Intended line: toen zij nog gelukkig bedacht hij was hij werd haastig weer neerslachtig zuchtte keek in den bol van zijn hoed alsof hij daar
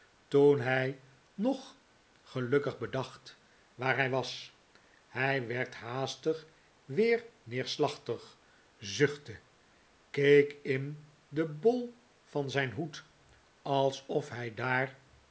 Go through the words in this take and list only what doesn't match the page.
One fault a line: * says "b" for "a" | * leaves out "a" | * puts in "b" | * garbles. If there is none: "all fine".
* says "hij" for "zij"
* puts in "waar"